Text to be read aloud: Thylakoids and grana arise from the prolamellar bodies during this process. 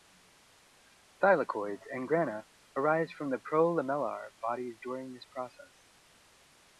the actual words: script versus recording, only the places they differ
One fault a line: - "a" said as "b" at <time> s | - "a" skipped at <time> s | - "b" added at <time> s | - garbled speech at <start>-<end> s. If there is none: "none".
none